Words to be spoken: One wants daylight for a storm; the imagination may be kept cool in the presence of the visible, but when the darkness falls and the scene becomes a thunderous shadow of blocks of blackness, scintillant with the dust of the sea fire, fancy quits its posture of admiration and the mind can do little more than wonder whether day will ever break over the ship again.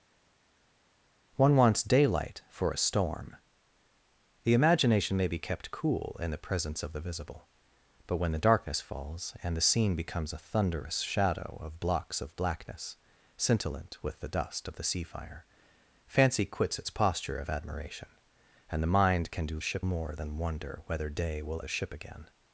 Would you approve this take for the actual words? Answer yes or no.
no